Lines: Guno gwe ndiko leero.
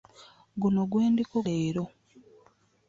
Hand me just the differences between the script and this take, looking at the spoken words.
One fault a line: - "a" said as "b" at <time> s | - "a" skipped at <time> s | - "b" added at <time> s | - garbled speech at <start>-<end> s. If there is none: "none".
none